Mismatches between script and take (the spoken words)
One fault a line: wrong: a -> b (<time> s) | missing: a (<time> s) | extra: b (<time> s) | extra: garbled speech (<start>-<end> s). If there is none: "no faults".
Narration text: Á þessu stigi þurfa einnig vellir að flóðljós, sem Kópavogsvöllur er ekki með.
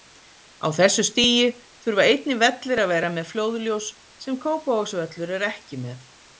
extra: vera með (3.0 s)